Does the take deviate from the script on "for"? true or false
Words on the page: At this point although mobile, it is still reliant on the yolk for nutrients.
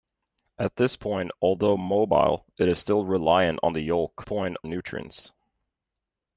true